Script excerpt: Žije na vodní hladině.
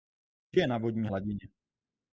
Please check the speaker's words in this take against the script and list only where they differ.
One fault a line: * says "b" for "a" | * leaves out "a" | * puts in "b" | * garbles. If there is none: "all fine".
all fine